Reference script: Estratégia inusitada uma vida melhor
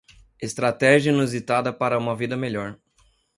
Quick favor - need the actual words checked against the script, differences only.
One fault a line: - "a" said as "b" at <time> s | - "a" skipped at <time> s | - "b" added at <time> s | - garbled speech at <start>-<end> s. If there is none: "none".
- "para" added at 1.7 s